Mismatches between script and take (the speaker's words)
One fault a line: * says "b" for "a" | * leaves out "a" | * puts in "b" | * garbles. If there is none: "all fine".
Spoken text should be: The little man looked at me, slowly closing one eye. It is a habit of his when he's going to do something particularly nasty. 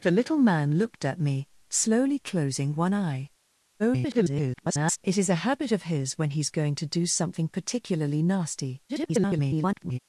* garbles
* garbles